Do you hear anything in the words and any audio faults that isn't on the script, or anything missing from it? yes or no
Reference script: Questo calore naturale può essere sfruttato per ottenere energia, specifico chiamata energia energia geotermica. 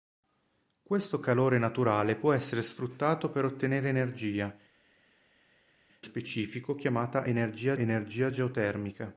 no